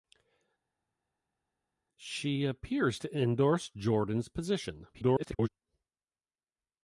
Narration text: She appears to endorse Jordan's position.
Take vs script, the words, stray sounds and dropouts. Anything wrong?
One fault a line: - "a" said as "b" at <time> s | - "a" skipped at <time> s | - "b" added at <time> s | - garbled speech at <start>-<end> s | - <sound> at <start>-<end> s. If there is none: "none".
- garbled speech at 4.9-5.5 s